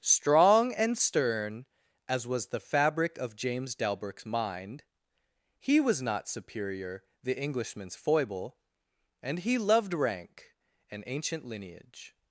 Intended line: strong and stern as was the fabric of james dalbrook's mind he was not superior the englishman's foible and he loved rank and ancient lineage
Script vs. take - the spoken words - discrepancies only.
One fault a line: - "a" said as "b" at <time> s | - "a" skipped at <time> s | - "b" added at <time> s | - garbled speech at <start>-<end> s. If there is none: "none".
none